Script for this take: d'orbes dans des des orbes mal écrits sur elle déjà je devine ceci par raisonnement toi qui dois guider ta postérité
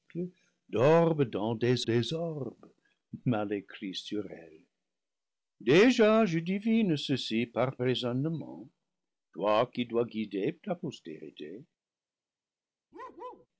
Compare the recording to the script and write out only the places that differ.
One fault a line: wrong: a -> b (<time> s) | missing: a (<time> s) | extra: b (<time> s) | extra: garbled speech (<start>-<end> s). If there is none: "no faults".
no faults